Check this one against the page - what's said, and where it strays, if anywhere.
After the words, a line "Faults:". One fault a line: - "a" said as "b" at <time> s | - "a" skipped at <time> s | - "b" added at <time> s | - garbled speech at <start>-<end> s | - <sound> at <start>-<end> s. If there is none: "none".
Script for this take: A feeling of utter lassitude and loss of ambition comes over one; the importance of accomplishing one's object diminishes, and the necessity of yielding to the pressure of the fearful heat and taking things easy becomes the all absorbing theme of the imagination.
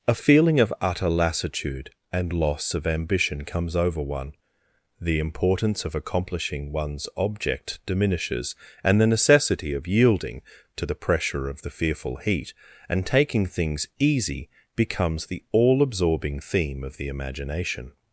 A feeling of utter lassitude and loss of ambition comes over one; the importance of accomplishing one's object diminishes, and the necessity of yielding to the pressure of the fearful heat and taking things easy becomes the all absorbing theme of the imagination.
Faults:
none